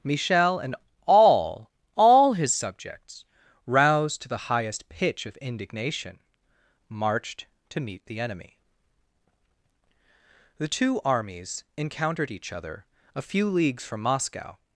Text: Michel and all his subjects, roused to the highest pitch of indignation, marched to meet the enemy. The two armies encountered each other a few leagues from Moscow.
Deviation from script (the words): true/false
true